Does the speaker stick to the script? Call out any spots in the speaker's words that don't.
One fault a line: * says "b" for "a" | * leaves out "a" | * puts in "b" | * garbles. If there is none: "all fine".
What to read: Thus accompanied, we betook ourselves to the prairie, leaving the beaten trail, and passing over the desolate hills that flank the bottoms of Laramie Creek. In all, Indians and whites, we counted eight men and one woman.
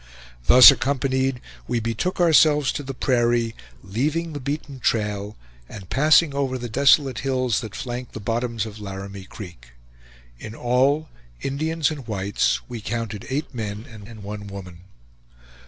* puts in "and"